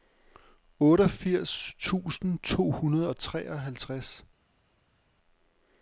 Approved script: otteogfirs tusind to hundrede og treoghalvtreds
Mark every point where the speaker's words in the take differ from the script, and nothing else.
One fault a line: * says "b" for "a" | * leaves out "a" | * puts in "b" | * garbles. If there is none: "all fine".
all fine